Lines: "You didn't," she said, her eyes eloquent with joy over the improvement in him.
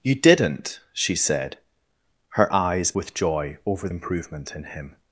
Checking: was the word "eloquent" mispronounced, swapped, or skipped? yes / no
yes